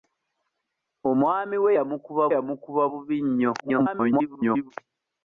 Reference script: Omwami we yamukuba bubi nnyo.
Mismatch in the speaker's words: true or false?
true